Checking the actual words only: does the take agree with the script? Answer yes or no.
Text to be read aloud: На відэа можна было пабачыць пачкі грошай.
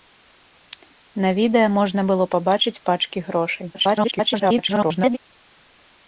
no